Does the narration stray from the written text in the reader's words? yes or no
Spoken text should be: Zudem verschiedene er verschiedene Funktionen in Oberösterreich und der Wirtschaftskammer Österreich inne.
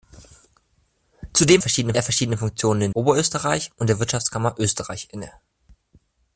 no